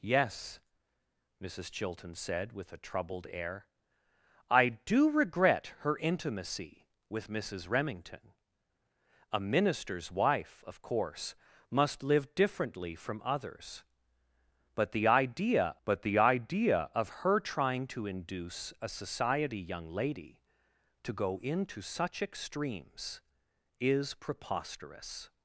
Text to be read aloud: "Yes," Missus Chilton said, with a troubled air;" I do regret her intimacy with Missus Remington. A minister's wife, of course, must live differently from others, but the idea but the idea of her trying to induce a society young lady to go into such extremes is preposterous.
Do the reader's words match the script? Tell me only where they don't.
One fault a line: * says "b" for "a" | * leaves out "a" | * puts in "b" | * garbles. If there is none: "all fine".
all fine